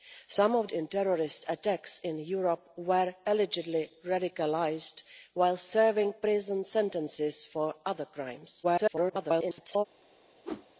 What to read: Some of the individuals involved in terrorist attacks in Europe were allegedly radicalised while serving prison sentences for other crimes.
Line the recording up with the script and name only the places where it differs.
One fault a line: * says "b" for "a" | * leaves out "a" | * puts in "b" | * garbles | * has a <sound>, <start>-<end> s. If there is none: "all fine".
* leaves out "the individuals involved"
* garbles
* has a whoosh, 10.4-10.7 s